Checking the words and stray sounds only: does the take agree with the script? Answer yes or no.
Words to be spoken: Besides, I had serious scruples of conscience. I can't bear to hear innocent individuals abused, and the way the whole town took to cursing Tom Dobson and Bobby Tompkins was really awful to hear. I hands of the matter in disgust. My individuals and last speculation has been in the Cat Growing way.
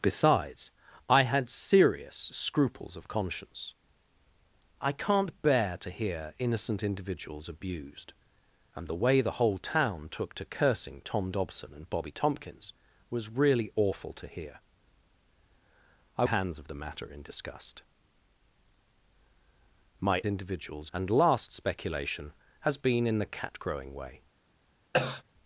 no